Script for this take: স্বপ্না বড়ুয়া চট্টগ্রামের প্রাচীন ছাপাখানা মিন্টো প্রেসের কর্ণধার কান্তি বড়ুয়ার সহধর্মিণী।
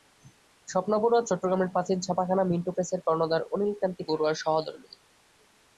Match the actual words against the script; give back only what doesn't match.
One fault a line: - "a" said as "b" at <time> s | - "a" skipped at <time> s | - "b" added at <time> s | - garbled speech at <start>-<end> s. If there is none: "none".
- "অনিল" added at 3.5 s